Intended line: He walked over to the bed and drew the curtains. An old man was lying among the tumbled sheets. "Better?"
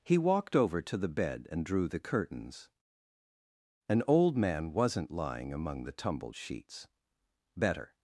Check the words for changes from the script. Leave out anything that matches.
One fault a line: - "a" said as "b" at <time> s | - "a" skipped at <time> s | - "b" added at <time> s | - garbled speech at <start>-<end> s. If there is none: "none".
- "was" said as "wasn't" at 4.7 s